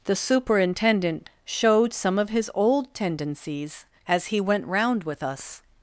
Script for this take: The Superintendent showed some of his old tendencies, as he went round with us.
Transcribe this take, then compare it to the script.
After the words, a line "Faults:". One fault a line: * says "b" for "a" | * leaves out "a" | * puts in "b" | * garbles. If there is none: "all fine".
The Superintendent showed some of his old tendencies, as he went round with us.
Faults:
all fine